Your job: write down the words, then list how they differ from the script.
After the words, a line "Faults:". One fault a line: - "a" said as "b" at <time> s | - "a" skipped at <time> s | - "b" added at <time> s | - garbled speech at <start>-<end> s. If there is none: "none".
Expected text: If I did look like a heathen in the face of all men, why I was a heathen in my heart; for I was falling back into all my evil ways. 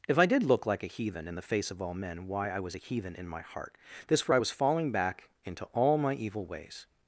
If I did look like a heathen in the face of all men, why I was a heathen in my heart; this for I was falling back into all my evil ways.
Faults:
- "this" added at 4.1 s